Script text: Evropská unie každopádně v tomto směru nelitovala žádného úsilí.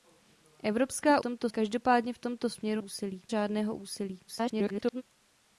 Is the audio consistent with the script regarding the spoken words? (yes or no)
no